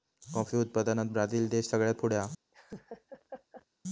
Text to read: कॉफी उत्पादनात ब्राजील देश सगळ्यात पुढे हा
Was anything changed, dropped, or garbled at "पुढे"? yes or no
no